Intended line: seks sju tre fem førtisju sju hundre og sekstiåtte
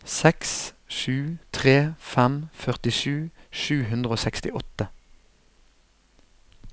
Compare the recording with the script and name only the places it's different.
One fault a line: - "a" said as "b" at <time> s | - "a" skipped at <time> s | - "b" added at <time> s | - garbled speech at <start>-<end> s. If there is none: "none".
none